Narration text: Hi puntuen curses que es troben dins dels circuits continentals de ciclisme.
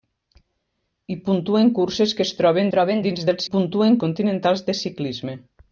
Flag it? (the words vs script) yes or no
yes